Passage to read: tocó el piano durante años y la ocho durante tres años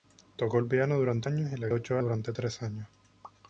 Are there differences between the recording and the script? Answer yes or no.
no